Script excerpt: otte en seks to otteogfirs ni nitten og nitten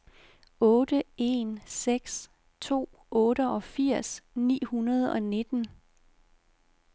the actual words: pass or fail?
fail